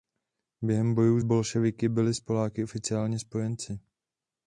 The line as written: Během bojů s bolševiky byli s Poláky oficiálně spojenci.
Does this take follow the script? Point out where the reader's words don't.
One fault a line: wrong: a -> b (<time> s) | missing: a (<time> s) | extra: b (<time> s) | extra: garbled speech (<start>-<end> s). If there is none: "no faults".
no faults